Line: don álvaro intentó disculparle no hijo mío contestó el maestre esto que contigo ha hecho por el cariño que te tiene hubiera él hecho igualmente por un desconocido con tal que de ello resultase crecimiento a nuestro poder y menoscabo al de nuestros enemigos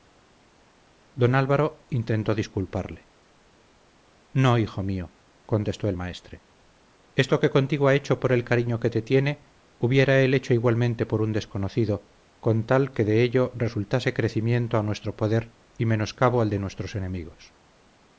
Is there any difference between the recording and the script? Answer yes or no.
no